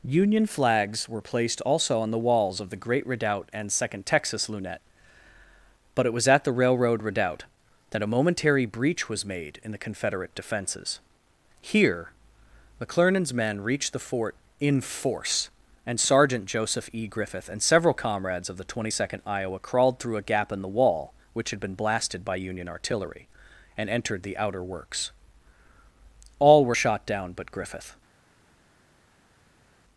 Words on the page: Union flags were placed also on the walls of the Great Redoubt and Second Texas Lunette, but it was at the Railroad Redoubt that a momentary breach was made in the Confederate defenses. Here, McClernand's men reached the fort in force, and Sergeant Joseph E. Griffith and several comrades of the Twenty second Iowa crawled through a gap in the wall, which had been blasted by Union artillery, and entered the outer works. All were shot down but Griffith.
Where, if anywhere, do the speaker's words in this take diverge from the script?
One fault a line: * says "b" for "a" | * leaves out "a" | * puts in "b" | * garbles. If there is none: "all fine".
all fine